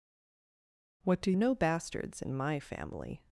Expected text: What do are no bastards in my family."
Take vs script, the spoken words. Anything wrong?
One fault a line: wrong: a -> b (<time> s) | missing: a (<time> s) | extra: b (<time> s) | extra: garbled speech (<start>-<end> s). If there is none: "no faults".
no faults